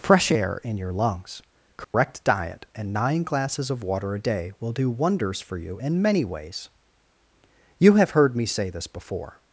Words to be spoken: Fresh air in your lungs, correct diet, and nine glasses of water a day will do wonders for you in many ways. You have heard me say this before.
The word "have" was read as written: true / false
true